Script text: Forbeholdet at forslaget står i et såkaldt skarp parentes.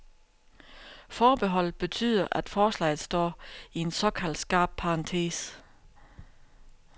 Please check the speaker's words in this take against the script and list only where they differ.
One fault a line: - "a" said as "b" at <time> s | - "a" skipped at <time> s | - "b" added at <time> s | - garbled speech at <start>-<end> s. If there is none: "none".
- "betyder" added at 1.8 s
- "et" said as "en" at 3.8 s